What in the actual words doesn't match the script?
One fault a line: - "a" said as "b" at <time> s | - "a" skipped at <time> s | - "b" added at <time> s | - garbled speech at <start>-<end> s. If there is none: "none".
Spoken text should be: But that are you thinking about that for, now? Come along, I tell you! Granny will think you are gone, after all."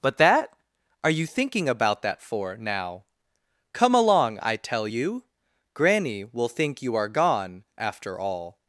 none